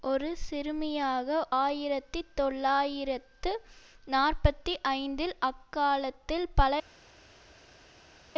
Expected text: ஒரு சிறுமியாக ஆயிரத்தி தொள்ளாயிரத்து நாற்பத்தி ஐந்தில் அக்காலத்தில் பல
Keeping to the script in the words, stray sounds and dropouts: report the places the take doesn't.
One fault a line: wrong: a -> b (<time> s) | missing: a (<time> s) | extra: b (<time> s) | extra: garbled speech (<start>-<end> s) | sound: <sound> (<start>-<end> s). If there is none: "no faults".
no faults